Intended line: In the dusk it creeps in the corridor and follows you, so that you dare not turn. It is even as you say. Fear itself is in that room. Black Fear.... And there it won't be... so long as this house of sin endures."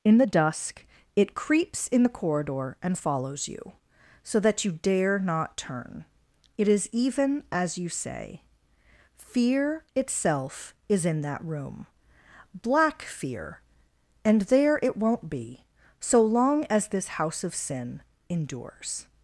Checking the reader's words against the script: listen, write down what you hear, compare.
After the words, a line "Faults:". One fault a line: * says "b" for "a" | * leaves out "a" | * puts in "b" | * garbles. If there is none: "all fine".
In the dusk it creeps in the corridor and follows you, so that you dare not turn. It is even as you say. Fear itself is in that room. Black Fear.... And there it won't be... so long as this house of sin endures."
Faults:
all fine